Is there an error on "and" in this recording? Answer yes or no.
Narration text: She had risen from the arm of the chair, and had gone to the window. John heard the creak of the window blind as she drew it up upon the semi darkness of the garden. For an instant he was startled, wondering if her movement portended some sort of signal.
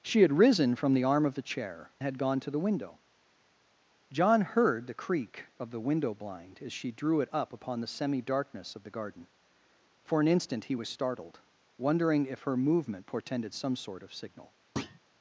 yes